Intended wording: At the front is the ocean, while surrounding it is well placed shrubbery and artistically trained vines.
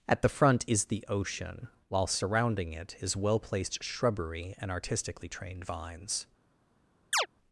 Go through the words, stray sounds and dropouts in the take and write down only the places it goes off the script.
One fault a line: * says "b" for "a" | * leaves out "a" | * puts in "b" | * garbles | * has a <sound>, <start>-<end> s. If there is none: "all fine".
* has a chirp, 7.1-7.3 s